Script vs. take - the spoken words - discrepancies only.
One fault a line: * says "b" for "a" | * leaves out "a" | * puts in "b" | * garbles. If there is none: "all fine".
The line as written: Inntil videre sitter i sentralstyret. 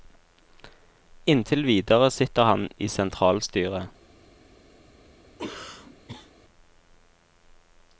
* puts in "han"